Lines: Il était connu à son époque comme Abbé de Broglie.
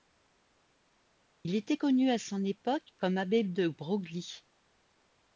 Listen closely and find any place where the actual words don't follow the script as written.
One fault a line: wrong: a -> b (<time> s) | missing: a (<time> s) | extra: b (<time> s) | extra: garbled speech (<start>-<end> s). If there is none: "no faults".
no faults